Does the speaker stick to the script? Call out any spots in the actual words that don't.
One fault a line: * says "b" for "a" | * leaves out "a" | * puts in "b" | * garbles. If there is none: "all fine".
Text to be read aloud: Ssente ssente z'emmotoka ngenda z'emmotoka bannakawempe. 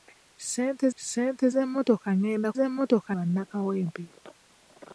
all fine